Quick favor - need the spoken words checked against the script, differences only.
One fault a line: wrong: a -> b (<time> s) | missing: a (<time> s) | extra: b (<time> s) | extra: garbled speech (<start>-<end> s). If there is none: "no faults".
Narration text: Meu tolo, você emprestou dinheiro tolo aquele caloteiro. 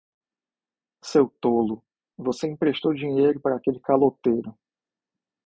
wrong: Meu -> Seu (1.0 s)
wrong: tolo -> para (3.4 s)